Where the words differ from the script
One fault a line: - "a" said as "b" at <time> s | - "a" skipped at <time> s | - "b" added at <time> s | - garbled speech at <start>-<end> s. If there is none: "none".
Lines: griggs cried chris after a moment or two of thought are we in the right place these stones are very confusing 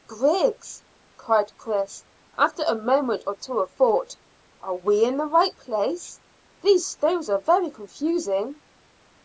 none